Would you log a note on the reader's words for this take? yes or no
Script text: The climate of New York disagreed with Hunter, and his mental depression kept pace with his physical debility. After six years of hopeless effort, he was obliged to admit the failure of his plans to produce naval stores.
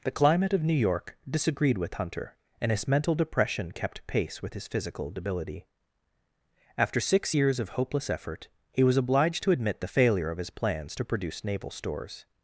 no